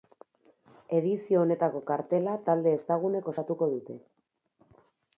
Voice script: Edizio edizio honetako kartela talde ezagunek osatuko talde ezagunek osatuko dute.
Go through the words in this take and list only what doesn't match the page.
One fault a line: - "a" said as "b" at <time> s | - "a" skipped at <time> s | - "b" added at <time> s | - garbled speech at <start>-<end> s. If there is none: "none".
- "edizio" skipped at 1.4 s
- "talde ezagunek osatuko" skipped at 3.7 s